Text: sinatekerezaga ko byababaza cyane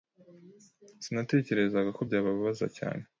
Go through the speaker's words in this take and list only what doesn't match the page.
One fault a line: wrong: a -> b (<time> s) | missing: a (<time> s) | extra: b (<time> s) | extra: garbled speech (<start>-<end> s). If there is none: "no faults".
no faults